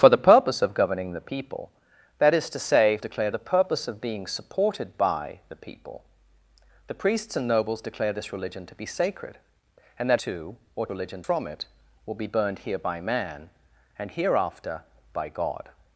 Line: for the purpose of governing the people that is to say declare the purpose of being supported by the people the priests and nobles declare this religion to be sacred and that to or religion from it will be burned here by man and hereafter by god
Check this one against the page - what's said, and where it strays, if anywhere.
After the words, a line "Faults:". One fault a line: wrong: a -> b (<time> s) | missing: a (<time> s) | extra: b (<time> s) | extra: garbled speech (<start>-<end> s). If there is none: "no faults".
for the purpose of governing the people that is to say declare the purpose of being supported by the people the priests and nobles declare this religion to be sacred and that to or religion from it will be burned here by man and hereafter by god
Faults:
no faults